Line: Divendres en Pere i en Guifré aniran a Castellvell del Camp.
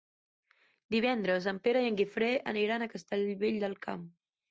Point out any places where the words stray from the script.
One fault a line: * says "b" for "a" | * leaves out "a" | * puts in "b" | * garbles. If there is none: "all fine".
all fine